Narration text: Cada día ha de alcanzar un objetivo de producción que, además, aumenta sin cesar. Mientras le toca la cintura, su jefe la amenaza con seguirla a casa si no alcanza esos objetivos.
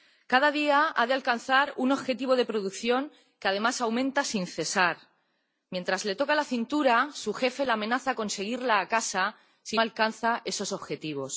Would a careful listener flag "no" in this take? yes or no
yes